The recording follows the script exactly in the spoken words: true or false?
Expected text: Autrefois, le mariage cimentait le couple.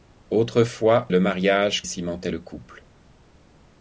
true